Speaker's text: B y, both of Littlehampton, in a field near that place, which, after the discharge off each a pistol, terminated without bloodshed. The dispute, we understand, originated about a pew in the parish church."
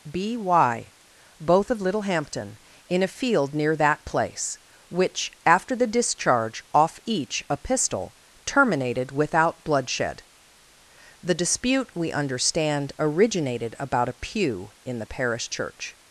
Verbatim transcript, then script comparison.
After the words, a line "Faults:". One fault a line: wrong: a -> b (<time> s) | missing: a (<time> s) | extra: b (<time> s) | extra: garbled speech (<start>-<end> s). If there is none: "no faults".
B y, both of Littlehampton, in a field near that place, which, after the discharge off each a pistol, terminated without bloodshed. The dispute, we understand, originated about a pew in the parish church."
Faults:
no faults